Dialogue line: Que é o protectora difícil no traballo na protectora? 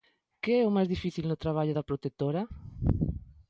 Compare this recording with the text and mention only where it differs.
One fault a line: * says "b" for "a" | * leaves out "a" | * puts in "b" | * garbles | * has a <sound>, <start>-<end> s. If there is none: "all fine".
* says "máis" for "protectora"
* says "da" for "na"